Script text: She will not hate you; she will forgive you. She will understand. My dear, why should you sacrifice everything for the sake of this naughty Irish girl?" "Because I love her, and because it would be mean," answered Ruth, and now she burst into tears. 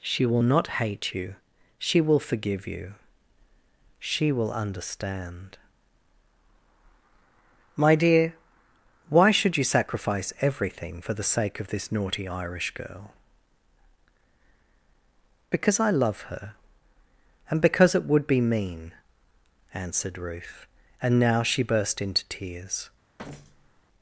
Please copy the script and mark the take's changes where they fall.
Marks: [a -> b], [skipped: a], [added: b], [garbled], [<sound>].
She will not hate you; she will forgive you. She will understand. My dear, why should you sacrifice everything for the sake of this naughty Irish girl?" "Because I love her, and because it would be mean," answered Ruth, and now she burst into tears. [thud]